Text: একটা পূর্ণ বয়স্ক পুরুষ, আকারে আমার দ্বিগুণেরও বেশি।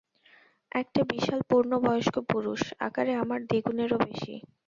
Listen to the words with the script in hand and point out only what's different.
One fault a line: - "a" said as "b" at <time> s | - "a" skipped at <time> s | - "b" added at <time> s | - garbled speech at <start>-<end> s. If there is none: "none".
- "বিশাল" added at 1.1 s